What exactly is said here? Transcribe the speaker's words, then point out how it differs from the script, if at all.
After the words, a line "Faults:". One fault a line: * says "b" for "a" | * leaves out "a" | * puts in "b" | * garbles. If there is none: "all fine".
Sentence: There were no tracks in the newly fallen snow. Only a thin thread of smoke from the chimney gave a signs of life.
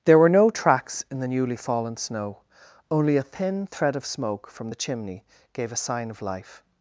There were no tracks in the newly fallen snow. Only a thin thread of smoke from the chimney gave a sign of life.
Faults:
* says "sign" for "signs"